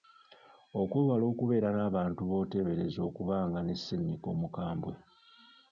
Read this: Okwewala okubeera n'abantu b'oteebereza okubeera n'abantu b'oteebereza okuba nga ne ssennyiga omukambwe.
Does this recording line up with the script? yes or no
no